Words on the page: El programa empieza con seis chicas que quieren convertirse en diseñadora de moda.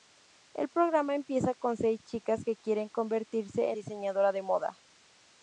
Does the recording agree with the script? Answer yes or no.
no